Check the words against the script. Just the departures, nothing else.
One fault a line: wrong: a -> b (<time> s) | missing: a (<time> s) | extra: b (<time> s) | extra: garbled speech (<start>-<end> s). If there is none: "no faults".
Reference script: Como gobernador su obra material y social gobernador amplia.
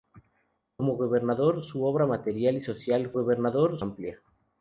no faults